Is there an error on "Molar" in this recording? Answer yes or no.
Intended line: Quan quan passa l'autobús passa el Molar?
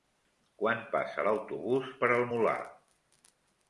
no